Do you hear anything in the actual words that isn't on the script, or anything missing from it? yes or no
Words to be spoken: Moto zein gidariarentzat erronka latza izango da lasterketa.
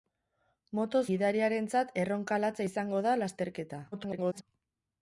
yes